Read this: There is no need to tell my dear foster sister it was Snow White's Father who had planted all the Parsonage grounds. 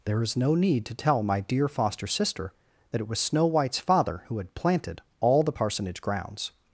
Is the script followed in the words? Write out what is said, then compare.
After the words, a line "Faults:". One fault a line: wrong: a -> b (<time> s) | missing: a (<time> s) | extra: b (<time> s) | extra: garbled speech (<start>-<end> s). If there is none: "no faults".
There is no need to tell my dear foster sister that it was Snow White's Father who had planted all the Parsonage grounds.
Faults:
extra: that (2.9 s)